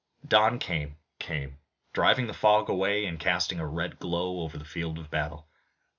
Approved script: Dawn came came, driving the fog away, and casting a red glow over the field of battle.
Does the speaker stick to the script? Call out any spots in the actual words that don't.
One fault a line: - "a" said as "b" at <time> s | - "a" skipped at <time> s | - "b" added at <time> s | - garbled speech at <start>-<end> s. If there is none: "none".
none